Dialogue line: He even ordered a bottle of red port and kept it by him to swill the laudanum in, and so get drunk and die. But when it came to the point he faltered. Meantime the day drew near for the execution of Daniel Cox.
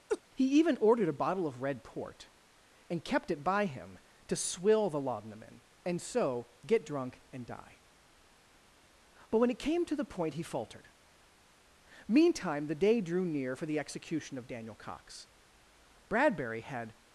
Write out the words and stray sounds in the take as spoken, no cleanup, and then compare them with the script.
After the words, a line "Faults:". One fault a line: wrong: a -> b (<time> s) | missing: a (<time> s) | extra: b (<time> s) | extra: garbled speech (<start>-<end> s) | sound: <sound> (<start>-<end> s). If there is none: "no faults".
He even ordered a bottle of red port and kept it by him to swill the laudanum in, and so get drunk and die. But when it came to the point he faltered. Meantime the day drew near for the execution of Daniel Cox. Bradbury had
Faults:
sound: laugh (0.1-0.2 s)
extra: Bradbury had (16.1 s)